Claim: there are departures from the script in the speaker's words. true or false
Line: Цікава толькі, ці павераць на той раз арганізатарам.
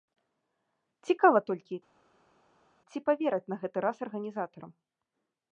true